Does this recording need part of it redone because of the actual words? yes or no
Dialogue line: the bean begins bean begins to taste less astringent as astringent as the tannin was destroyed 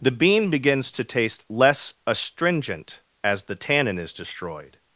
yes